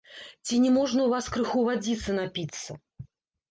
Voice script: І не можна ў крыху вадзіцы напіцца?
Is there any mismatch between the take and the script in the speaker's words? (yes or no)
yes